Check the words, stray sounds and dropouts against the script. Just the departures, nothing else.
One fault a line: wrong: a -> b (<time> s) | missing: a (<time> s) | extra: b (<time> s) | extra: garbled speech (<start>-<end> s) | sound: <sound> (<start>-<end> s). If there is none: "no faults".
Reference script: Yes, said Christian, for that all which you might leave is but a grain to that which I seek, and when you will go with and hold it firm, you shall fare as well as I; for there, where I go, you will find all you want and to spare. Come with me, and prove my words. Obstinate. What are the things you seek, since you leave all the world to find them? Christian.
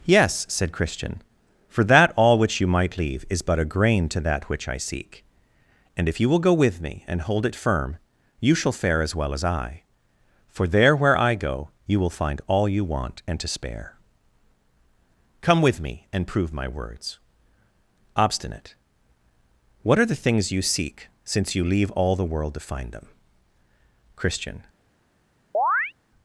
wrong: when -> if (6.1 s)
extra: me (6.8 s)
sound: chirp (25.5-25.9 s)